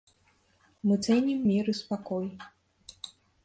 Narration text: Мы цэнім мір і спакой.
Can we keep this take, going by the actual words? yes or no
yes